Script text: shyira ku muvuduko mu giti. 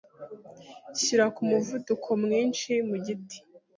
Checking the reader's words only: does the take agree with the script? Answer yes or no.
no